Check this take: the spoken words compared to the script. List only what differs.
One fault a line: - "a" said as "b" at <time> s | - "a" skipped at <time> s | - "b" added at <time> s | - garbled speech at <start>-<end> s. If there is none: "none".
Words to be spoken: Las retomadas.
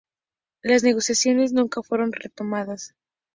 - "negociaciones nunca fueron" added at 0.8 s